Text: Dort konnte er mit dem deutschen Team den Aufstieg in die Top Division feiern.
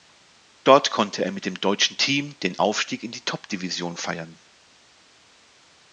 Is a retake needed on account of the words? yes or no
no